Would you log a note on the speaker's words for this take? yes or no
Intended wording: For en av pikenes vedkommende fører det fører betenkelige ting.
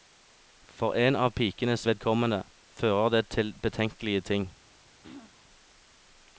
yes